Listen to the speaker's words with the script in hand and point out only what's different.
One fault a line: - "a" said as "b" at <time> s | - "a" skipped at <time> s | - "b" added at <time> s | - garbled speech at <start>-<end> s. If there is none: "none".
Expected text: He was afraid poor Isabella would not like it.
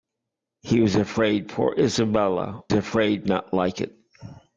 - "would" said as "afraid" at 2.7 s